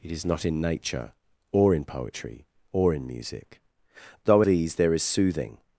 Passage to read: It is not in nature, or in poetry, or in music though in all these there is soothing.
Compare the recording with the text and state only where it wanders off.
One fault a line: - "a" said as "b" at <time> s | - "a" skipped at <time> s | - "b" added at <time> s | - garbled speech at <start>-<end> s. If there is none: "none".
- "in all" skipped at 4.4 s